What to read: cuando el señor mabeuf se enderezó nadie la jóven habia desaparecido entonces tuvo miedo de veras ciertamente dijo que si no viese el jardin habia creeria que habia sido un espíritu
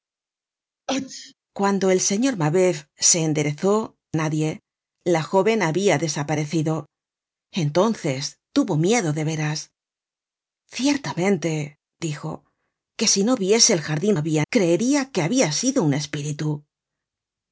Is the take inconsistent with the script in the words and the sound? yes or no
yes